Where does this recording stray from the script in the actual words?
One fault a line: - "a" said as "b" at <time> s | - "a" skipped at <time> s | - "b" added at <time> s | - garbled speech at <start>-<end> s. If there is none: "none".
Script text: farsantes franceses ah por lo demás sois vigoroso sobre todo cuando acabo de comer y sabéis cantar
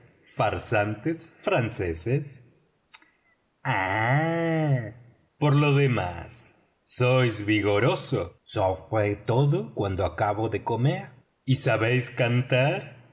none